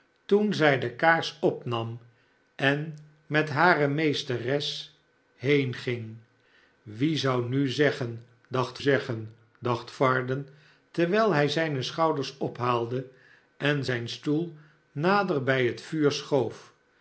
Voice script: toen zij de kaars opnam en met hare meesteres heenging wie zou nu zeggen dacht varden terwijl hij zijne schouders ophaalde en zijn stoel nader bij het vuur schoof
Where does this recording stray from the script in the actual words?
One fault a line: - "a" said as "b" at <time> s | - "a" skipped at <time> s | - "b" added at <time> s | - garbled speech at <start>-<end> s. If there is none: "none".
- "zeggen dacht" added at 8.8 s